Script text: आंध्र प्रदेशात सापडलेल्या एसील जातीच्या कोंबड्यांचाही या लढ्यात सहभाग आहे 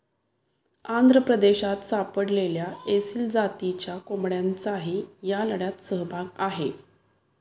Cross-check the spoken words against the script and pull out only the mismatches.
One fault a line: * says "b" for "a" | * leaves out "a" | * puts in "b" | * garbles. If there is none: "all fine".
all fine